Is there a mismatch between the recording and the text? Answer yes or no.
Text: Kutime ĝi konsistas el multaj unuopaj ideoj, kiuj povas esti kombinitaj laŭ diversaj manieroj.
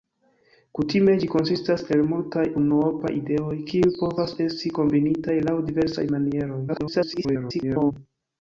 yes